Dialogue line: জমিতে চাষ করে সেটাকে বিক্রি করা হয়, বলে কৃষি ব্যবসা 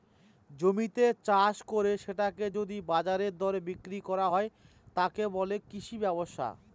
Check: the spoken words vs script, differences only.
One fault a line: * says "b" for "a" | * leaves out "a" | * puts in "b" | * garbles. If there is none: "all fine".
* puts in "যদি বাজারের দরে"
* puts in "তাকে"